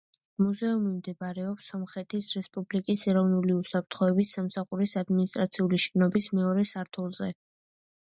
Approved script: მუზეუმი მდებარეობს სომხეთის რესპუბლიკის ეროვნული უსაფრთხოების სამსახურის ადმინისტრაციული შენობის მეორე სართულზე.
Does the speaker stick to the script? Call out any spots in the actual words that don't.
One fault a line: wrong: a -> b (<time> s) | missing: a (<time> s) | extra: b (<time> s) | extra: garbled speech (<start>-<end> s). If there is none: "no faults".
no faults